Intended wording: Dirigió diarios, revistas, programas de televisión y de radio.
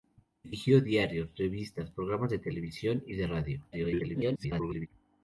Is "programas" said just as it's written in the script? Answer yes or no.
yes